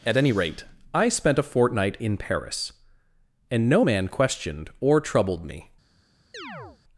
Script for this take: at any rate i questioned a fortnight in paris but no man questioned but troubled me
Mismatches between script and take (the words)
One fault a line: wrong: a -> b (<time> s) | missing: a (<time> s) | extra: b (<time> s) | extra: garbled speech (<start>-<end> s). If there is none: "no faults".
wrong: questioned -> spent (1.1 s)
wrong: but -> and (3.5 s)
wrong: but -> or (4.8 s)